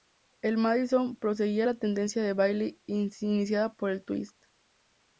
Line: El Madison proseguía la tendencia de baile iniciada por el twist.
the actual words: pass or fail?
pass